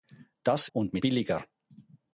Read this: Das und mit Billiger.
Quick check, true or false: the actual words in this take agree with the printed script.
true